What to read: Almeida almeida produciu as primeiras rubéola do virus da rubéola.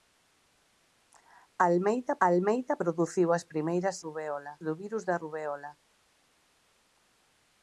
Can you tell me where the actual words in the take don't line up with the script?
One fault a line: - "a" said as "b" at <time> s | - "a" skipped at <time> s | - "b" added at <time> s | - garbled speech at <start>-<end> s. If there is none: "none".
none